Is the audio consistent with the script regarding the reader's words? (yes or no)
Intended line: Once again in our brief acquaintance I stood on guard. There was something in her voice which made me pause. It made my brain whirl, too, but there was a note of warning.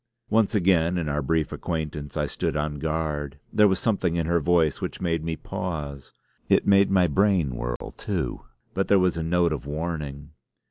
yes